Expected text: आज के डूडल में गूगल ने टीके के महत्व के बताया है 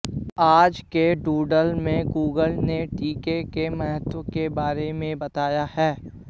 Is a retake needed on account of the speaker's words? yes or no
yes